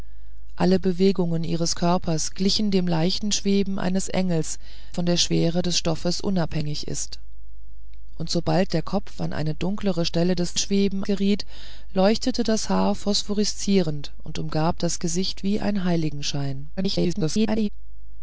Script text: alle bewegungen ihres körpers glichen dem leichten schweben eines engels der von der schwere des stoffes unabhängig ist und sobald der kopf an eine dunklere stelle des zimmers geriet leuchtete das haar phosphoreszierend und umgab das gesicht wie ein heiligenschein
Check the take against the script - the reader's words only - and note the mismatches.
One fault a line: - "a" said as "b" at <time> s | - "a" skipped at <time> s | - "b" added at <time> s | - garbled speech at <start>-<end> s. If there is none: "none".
- "der" skipped at 4.6 s
- "zimmers" said as "schweben" at 10.6 s
- garbled speech at 16.8-17.7 s